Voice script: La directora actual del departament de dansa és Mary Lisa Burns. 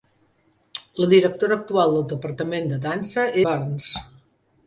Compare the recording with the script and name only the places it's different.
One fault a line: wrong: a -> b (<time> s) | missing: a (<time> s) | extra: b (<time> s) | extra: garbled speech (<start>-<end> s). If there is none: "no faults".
missing: és Mary Lisa (3.3 s)